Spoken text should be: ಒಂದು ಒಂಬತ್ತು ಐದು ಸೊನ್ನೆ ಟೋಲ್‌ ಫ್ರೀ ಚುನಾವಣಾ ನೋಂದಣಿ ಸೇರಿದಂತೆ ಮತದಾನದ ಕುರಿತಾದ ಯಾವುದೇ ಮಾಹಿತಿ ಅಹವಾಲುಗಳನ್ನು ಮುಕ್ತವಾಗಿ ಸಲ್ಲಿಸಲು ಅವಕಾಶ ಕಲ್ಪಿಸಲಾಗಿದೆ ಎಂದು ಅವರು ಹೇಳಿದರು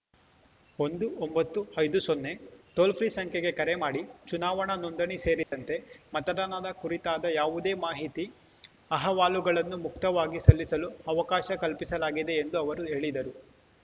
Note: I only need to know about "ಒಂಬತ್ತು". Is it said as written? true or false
true